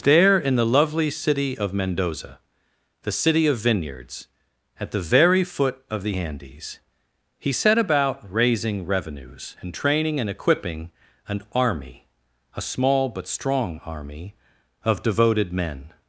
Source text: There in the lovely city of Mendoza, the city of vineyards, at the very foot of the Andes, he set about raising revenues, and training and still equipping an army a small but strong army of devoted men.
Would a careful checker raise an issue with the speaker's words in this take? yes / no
yes